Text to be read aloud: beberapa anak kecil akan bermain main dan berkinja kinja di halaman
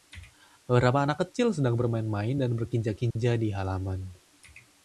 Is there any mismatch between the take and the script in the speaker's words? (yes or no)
yes